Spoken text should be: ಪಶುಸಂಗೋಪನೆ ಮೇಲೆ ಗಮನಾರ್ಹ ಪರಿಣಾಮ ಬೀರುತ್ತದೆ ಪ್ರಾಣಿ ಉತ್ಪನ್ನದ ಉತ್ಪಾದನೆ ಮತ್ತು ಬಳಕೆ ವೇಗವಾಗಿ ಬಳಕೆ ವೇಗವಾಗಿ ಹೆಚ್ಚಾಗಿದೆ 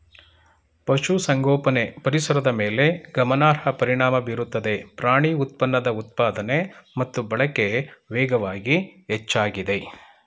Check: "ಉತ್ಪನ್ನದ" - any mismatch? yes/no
no